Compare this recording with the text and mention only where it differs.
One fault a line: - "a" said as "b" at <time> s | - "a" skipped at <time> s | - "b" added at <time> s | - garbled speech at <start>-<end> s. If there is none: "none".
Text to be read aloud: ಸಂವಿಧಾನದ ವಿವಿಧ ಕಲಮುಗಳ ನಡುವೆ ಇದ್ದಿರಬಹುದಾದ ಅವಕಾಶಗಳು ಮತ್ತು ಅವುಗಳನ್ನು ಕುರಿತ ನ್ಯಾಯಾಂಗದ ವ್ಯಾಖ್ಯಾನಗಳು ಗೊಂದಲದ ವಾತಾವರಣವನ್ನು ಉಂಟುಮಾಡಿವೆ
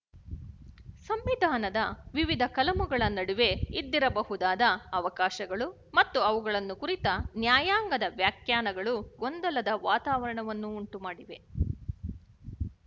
none